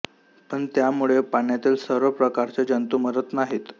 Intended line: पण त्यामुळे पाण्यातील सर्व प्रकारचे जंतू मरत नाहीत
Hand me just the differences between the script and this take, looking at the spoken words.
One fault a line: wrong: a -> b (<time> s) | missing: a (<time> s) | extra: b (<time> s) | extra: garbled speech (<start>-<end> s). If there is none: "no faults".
no faults